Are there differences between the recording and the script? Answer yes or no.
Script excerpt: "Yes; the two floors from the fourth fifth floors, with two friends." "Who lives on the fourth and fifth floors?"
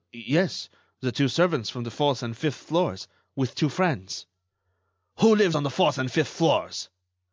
yes